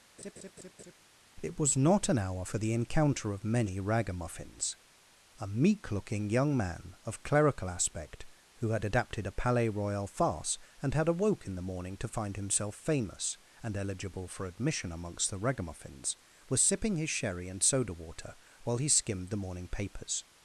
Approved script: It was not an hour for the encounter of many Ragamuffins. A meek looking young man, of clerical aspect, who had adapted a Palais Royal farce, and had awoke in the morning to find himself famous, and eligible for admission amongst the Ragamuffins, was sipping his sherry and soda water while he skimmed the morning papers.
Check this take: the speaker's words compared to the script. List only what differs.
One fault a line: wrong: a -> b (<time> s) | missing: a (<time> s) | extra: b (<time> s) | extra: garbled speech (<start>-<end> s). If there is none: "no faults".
no faults